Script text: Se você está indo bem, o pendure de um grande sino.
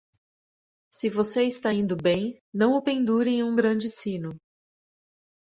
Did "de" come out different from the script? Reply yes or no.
yes